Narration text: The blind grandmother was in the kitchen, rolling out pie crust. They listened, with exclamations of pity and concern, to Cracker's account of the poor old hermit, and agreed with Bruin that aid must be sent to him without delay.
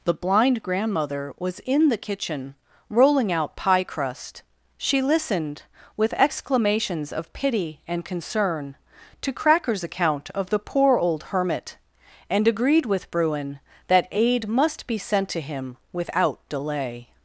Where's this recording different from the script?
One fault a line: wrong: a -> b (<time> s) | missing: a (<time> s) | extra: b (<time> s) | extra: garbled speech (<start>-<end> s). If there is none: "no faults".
wrong: They -> She (4.8 s)